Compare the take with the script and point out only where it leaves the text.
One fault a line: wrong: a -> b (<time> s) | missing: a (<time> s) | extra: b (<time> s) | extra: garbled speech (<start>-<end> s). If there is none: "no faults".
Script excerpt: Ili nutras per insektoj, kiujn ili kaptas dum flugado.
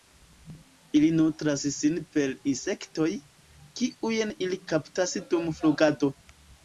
extra: sin (1.8 s)